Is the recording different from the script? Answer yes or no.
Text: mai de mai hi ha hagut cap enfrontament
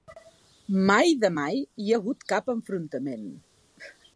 no